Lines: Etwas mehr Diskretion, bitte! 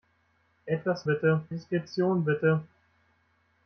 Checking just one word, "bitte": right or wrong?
right